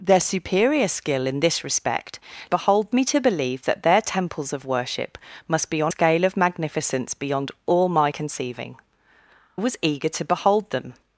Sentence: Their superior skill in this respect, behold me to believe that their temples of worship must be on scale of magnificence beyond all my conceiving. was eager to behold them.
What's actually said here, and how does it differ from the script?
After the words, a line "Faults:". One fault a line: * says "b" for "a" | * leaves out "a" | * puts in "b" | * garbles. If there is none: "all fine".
Their superior skill in this respect, behold me to believe that their temples of worship must be on scale of magnificence beyond all my conceiving. was eager to behold them.
Faults:
all fine